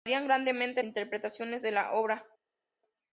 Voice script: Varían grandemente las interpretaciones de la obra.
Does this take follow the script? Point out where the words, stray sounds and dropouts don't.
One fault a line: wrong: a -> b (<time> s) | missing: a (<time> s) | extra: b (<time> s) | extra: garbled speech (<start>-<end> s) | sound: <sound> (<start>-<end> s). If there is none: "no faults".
missing: las (0.8 s)